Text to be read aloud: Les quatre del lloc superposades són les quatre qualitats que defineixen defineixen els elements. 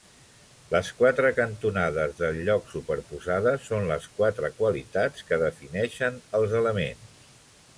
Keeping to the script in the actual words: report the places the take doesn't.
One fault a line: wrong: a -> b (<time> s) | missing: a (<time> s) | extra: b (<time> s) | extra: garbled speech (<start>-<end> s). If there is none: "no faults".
extra: cantonades (1.4 s)
missing: defineixen (6.2 s)